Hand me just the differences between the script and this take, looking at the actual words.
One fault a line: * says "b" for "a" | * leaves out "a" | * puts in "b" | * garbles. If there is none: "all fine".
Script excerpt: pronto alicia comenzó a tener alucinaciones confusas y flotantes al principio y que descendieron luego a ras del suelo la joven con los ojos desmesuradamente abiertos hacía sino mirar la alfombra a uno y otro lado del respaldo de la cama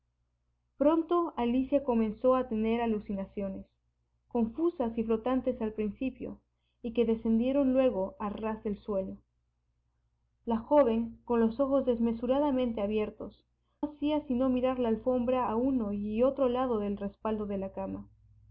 all fine